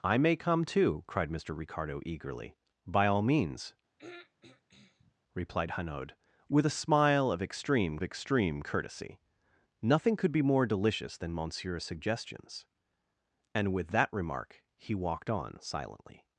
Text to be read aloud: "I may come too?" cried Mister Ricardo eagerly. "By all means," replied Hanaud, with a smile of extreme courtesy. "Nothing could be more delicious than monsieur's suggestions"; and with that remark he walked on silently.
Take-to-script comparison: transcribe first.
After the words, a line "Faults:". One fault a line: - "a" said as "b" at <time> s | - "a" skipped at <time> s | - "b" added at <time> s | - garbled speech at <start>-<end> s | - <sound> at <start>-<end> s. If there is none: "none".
"I may come too?" cried Mister Ricardo eagerly. "By all means," replied Hanaud, with a smile of extreme extreme courtesy. "Nothing could be more delicious than monsieur's suggestions"; and with that remark he walked on silently.
Faults:
- throat clearing at 4.0-5.2 s
- "extreme" added at 8.0 s